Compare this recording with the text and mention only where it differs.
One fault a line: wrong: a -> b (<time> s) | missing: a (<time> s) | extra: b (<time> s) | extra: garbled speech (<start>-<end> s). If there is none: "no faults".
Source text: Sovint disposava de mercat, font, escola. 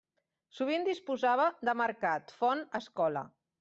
no faults